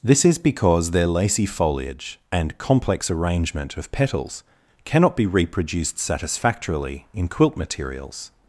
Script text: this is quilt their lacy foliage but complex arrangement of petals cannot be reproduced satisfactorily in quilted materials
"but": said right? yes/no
no